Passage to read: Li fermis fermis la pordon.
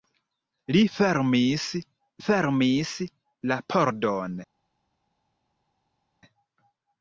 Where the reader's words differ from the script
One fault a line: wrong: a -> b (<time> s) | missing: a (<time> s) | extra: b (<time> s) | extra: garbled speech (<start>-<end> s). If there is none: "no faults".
no faults